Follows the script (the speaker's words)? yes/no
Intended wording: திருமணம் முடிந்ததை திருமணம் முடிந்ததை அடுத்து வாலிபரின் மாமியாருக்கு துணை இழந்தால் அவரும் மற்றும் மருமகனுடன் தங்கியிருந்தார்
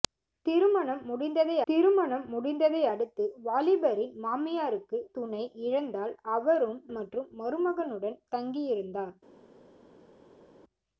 yes